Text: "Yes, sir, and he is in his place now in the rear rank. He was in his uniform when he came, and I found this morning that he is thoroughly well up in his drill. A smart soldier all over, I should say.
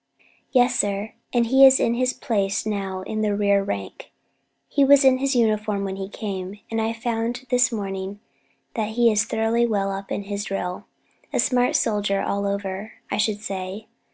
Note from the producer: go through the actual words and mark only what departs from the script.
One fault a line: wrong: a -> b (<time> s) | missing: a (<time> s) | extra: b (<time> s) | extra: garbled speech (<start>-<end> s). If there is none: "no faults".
no faults